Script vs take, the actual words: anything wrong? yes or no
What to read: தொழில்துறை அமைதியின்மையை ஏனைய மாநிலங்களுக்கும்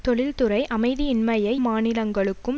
yes